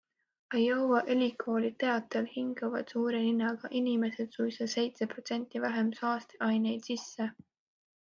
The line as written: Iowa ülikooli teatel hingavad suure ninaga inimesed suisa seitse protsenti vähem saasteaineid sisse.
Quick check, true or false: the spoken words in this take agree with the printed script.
true